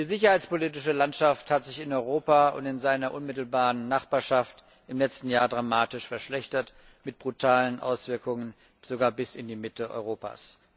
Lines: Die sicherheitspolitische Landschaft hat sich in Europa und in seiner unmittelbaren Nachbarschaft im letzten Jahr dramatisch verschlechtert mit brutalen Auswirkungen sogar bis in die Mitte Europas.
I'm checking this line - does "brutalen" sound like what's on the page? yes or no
yes